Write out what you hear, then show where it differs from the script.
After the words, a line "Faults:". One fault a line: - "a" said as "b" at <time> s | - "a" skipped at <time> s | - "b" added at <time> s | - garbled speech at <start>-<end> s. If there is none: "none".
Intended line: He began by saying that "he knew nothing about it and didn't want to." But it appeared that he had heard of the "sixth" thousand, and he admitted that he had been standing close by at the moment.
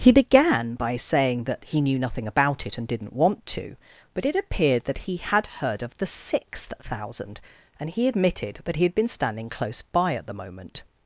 He began by saying that "he knew nothing about it and didn't want to." But it appeared that he had heard of the "sixth" thousand, and he admitted that he had been standing close by at the moment.
Faults:
none